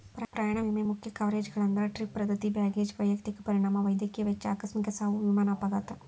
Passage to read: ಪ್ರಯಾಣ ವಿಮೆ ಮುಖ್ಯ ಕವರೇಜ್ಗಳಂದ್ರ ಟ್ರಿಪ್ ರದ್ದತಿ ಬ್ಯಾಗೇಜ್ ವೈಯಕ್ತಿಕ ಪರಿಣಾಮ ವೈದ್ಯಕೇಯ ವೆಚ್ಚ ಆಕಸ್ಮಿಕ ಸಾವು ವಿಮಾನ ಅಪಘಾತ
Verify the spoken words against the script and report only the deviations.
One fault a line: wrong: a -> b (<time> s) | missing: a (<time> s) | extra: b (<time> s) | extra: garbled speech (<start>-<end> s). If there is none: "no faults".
no faults